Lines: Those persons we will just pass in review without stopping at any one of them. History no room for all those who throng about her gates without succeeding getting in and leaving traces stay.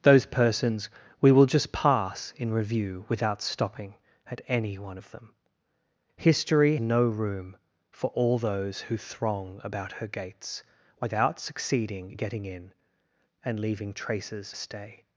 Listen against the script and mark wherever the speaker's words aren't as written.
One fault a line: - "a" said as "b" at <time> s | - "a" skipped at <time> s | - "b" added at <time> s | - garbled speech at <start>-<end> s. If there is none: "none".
none